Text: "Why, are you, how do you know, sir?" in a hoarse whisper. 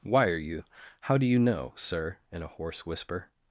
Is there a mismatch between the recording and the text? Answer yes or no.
no